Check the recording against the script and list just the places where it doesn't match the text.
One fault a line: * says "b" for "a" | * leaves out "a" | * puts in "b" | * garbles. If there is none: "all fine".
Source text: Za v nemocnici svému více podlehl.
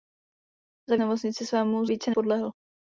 all fine